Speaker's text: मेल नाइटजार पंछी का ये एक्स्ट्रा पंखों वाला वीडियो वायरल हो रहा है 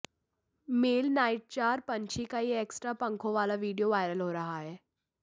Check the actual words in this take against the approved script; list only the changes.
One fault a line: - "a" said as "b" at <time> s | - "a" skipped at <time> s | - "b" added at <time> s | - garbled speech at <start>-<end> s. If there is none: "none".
none